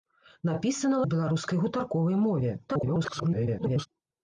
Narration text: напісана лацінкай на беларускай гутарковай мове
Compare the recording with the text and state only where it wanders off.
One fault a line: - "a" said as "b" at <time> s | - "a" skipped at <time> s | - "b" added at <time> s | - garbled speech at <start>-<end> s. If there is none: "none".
- "лацінкай" skipped at 1.0 s
- garbled speech at 2.7-3.9 s